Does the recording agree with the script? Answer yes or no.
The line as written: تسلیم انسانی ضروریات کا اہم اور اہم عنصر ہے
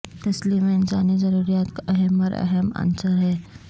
yes